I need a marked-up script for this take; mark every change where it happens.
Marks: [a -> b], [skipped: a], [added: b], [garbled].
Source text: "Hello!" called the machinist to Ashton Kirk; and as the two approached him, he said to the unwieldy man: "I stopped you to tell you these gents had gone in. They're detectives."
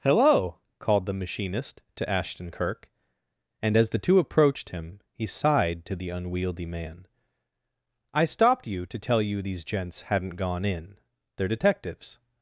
"Hello!" called the machinist to Ashton Kirk; and as the two approached him, he [said -> sighed] to the unwieldy man: "I stopped you to tell you these gents [had -> hadn't] gone in. They're detectives."